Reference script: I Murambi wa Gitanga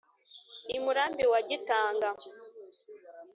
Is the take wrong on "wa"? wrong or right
right